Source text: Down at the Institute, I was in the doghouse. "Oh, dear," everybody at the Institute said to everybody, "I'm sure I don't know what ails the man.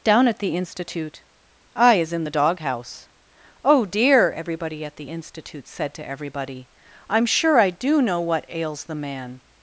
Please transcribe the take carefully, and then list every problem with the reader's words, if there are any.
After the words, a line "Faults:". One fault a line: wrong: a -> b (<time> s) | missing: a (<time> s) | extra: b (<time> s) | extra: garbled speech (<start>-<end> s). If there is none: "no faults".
Down at the Institute, I is in the doghouse. "Oh, dear," everybody at the Institute said to everybody, "I'm sure I do know what ails the man.
Faults:
wrong: was -> is (1.9 s)
wrong: don't -> do (7.7 s)